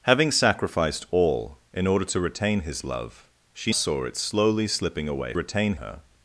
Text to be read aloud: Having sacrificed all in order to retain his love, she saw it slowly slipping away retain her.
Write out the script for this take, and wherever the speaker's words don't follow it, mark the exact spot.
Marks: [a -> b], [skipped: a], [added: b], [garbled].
Having sacrificed all in order to retain his love, she saw it slowly slipping away retain her.